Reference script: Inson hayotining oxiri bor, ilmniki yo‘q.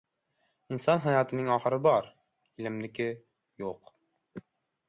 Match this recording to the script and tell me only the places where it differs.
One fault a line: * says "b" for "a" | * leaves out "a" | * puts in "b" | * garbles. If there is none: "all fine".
all fine